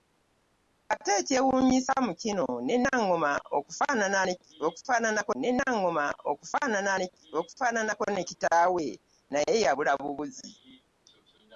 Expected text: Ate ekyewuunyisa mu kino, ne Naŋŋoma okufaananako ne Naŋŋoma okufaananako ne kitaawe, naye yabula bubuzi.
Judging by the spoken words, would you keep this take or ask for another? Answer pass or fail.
pass